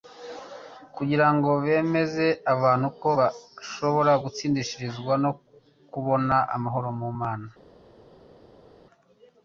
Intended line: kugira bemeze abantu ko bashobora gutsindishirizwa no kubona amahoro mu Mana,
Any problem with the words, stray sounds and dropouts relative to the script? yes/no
yes